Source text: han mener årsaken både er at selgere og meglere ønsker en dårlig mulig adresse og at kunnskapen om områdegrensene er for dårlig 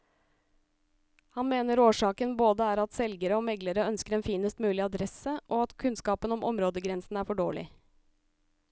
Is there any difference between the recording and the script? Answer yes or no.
yes